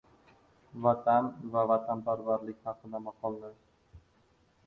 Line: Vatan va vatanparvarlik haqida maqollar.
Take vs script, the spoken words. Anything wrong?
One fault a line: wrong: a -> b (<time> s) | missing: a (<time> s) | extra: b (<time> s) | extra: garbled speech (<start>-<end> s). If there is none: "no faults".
no faults